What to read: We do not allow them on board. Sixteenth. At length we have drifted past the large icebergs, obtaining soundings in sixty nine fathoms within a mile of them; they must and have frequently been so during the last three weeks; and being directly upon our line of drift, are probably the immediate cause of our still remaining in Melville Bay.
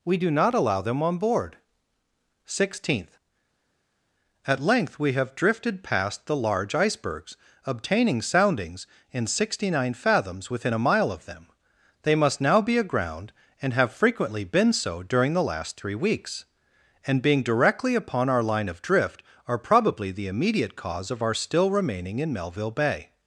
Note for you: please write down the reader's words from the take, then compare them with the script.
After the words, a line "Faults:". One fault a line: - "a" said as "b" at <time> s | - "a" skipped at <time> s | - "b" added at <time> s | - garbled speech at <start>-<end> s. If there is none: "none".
We do not allow them on board. Sixteenth. At length we have drifted past the large icebergs, obtaining soundings in sixty nine fathoms within a mile of them; they must now be aground, and have frequently been so during the last three weeks; and being directly upon our line of drift, are probably the immediate cause of our still remaining in Melville Bay.
Faults:
- "now be aground" added at 12.4 s